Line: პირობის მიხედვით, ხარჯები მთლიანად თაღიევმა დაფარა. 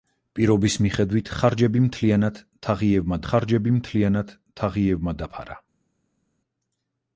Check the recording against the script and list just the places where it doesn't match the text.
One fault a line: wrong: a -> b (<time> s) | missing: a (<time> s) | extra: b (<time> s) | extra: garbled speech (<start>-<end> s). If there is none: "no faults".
extra: ხარჯები მთლიანად თაღიევმა (3.3 s)